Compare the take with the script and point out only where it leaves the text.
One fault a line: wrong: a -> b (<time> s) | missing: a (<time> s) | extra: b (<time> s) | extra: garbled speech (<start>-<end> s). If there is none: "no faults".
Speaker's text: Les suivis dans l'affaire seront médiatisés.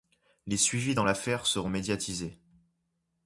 no faults